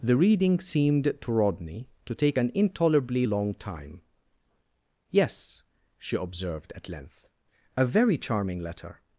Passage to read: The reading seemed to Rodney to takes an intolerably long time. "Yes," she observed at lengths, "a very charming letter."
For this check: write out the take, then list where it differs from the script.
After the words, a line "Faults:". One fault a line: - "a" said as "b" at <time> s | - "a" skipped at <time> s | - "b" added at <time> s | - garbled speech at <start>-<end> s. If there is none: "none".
The reading seemed to Rodney to take an intolerably long time. "Yes," she observed at length, "a very charming letter."
Faults:
- "takes" said as "take" at 2.1 s
- "lengths" said as "length" at 6.9 s